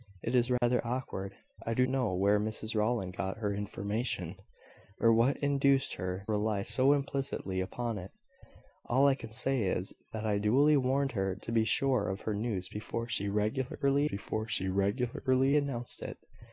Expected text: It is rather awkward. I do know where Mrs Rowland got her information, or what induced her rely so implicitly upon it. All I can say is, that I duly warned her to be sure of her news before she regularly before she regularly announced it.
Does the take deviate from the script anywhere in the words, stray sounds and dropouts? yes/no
yes